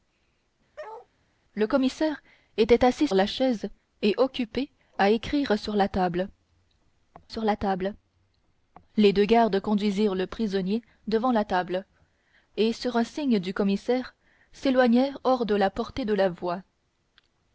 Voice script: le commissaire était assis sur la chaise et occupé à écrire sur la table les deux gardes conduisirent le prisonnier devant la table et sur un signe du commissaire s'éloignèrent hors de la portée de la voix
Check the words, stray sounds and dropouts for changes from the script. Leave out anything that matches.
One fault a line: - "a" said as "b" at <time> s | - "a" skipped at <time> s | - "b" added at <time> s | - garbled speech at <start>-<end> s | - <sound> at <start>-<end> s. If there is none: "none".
- bark at 0.8-1.1 s
- "sur" skipped at 3.1 s
- "sur la table" added at 7.3 s